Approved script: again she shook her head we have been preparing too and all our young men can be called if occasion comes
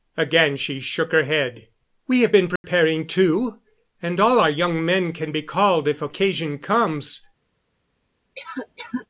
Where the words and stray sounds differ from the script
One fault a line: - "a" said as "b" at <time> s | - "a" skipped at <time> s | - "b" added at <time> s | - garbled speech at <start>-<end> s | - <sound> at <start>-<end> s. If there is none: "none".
- dropout at 2.6-2.6 s
- cough at 8.4-9.1 s